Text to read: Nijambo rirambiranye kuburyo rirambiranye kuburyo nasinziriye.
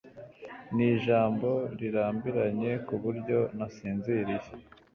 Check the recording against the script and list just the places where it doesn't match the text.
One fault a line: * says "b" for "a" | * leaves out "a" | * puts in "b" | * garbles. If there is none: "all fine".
* leaves out "rirambiranye kuburyo"